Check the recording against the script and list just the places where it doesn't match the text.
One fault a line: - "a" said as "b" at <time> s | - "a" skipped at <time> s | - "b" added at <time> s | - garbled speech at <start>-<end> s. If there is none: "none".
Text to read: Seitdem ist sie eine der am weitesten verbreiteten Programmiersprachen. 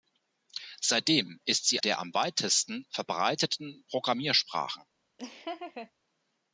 - "eine" skipped at 1.8 s